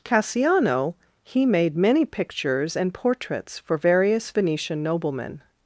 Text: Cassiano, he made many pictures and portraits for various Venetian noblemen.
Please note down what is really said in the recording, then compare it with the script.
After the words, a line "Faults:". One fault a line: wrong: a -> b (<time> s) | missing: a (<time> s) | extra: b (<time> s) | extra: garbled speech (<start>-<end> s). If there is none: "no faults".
Cassiano, he made many pictures and portraits for various Venetian noblemen.
Faults:
no faults